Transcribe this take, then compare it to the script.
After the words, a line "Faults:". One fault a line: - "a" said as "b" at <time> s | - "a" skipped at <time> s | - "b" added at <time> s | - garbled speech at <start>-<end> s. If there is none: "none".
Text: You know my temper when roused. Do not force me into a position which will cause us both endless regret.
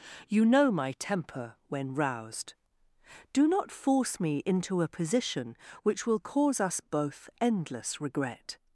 You know my temper when roused. Do not force me into a position which will cause us both endless regret.
Faults:
none